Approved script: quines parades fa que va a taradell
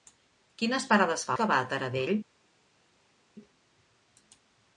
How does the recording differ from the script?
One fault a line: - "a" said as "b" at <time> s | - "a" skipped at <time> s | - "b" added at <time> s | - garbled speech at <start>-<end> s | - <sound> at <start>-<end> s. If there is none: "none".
none